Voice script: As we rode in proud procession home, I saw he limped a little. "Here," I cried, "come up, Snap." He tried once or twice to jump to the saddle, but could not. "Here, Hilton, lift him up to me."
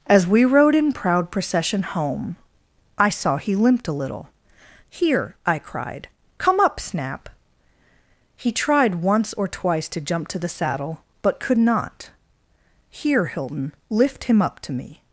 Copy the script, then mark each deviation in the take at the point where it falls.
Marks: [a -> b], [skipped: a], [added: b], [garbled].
As we rode in proud procession home, I saw he limped a little. "Here," I cried, "come up, Snap." He tried once or twice to jump to the saddle, but could not. "Here, Hilton, lift him up to me."